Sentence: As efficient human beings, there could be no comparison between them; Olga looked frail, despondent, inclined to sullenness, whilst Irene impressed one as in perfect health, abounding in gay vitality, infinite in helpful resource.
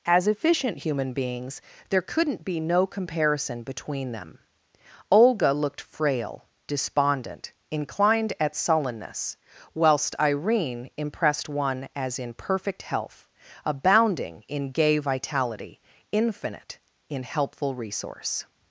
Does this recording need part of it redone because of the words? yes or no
yes